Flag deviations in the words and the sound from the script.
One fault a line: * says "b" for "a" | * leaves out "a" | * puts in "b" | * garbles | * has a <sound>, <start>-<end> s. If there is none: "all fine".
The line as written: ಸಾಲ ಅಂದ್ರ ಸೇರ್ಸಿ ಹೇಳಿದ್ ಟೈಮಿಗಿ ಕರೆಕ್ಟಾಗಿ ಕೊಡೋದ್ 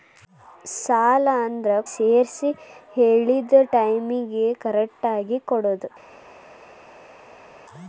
all fine